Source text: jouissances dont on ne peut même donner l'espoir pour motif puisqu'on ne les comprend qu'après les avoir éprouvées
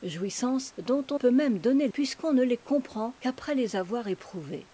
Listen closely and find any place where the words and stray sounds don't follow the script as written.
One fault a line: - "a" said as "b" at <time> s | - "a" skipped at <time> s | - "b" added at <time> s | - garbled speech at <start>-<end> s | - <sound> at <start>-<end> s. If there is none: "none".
- "ne" skipped at 1.2 s
- "l'espoir pour motif" skipped at 1.9 s